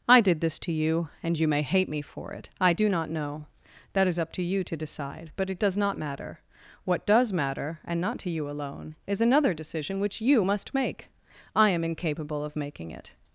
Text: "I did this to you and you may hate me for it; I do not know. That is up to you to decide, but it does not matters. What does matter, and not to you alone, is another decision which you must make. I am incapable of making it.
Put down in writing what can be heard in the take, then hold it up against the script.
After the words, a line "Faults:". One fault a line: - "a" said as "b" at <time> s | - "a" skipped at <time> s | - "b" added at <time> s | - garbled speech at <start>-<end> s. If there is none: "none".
"I did this to you and you may hate me for it; I do not know. That is up to you to decide, but it does not matter. What does matter, and not to you alone, is another decision which you must make. I am incapable of making it.
Faults:
- "matters" said as "matter" at 6.0 s